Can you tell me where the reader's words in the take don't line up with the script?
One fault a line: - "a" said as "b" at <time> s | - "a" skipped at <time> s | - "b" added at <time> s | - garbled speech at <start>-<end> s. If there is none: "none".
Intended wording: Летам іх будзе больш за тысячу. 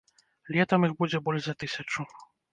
none